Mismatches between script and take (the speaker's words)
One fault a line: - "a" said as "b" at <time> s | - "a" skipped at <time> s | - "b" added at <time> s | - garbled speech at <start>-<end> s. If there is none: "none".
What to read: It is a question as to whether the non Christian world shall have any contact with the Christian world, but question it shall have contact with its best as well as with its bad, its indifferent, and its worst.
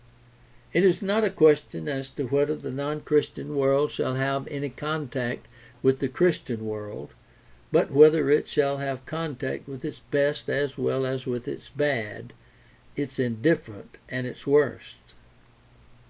- "not" added at 1.0 s
- "question" said as "whether" at 7.9 s